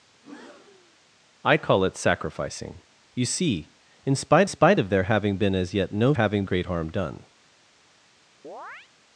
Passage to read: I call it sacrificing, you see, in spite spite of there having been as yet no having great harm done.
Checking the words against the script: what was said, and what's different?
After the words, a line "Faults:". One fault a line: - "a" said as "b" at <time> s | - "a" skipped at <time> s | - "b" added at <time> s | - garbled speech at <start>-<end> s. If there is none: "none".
I call it sacrificing, you see, in spite spite of there having been as yet no having great harm done.
Faults:
none